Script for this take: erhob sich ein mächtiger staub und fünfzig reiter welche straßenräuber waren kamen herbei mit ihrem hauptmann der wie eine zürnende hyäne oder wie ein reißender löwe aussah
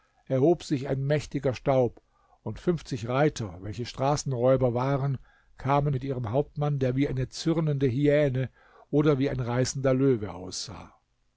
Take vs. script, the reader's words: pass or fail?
fail